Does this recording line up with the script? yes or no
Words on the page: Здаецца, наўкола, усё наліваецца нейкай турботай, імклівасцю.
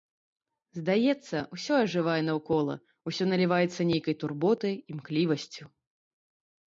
no